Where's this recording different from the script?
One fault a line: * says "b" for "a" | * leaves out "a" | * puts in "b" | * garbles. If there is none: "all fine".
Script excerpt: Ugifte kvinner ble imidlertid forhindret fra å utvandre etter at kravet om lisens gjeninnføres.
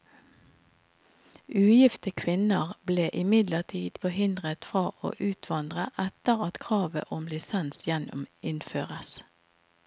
all fine